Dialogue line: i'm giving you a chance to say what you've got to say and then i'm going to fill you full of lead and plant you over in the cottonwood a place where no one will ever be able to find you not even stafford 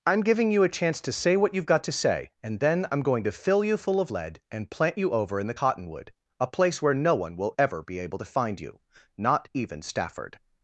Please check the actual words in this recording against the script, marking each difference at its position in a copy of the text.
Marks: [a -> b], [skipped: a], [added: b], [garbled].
i'm giving you a chance to say what you've got to say and then i'm going to fill you full of lead and plant you over in the cottonwood a place where no one will ever be able to find you not even stafford